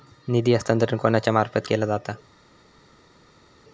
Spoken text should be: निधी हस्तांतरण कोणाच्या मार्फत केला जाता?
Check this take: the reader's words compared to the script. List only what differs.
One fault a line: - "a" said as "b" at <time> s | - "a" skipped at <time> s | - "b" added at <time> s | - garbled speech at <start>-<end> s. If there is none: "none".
none